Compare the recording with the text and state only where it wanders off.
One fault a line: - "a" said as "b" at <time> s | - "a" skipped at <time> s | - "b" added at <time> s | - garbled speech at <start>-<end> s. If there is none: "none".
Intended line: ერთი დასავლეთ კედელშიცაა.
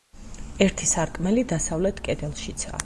- "სარკმელი" added at 0.9 s